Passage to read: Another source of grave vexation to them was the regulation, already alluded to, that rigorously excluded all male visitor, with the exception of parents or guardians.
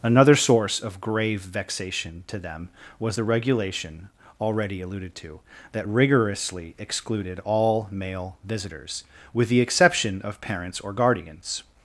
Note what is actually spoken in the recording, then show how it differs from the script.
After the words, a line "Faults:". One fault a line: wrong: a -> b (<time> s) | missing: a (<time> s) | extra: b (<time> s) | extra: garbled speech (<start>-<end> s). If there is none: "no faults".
Another source of grave vexation to them was the regulation, already alluded to, that rigorously excluded all male visitors, with the exception of parents or guardians.
Faults:
wrong: visitor -> visitors (8.5 s)